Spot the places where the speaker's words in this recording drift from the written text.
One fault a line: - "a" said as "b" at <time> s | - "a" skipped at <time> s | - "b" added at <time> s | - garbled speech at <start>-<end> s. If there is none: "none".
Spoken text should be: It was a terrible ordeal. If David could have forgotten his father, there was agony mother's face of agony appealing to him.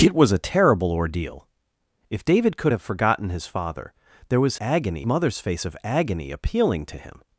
none